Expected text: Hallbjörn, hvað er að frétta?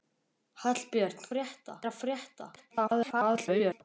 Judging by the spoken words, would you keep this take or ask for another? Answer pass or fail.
fail